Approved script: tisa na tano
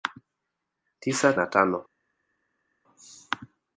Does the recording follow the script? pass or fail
pass